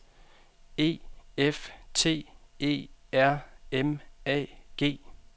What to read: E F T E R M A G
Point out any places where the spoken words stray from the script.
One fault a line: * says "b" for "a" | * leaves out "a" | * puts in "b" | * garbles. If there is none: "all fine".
all fine